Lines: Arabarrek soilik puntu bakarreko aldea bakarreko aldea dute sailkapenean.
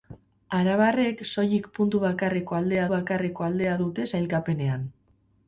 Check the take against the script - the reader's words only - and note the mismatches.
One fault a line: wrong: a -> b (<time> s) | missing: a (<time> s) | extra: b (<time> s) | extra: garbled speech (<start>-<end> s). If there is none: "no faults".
no faults